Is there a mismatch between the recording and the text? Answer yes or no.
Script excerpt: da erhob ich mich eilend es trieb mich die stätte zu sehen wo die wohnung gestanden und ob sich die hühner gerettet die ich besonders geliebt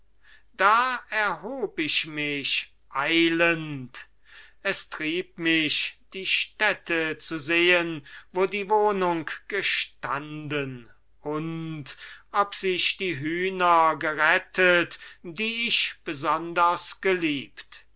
no